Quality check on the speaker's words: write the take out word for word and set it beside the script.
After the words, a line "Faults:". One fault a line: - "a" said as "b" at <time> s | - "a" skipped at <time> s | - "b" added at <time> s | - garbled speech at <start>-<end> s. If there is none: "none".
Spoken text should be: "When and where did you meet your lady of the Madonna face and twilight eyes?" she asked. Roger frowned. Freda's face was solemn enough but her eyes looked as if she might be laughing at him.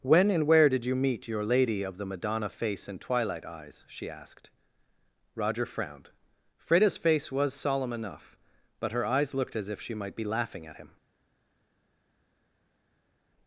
"When and where did you meet your lady of the Madonna face and twilight eyes?" she asked. Roger frowned. Freda's face was solemn enough but her eyes looked as if she might be laughing at him.
Faults:
none